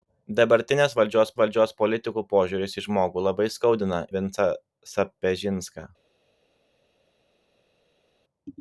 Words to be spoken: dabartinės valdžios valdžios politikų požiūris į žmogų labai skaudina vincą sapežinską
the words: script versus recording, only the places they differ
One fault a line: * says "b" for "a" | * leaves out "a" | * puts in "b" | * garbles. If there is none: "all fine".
all fine